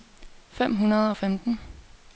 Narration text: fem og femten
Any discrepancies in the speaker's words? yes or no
yes